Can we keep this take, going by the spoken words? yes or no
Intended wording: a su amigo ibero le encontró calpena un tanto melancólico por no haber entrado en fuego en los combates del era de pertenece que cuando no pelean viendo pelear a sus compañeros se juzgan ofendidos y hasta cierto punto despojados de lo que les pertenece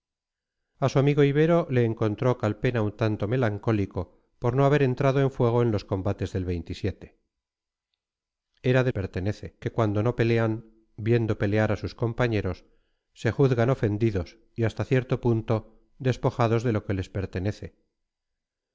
yes